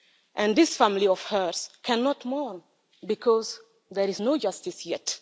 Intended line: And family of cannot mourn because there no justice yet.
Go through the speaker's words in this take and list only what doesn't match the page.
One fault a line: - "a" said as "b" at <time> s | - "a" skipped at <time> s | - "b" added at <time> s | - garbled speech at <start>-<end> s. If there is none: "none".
- "this" added at 0.6 s
- "hers" added at 1.2 s
- "is" added at 4.1 s